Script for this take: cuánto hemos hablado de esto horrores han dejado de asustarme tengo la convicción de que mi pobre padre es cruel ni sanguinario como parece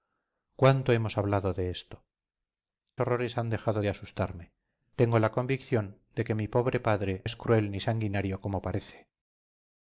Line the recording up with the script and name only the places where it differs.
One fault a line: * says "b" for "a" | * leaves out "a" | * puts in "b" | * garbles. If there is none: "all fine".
all fine